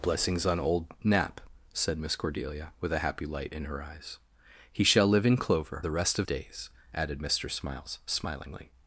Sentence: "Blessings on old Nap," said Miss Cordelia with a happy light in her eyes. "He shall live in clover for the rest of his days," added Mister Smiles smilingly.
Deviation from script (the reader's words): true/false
true